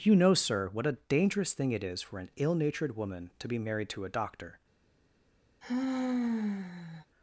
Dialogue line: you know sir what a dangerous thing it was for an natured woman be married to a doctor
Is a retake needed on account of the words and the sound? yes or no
yes